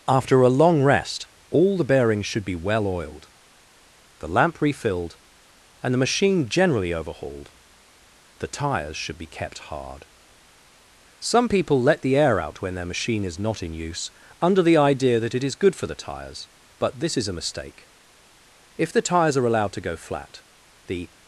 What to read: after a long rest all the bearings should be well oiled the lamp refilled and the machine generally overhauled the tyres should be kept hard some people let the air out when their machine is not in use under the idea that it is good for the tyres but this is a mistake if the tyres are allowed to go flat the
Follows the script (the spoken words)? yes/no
yes